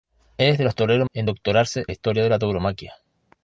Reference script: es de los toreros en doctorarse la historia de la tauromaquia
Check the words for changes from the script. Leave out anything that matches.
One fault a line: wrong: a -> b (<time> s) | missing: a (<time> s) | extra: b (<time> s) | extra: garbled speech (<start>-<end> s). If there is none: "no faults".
no faults